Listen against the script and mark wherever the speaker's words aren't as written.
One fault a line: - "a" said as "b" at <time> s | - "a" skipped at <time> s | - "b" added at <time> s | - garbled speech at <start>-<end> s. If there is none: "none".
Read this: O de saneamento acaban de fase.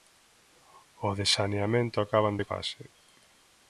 none